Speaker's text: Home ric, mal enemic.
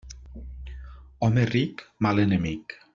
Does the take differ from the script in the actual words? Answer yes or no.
no